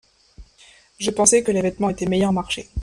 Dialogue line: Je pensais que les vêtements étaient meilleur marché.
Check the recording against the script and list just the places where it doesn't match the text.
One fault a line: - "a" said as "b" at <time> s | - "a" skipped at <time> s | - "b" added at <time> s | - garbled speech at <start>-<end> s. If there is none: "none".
none